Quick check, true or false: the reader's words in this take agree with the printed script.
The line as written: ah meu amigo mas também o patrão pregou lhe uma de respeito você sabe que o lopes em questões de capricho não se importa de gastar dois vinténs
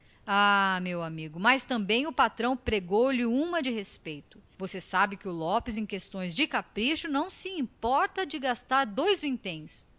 true